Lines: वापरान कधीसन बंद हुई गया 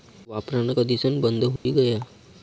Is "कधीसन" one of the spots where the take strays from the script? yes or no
no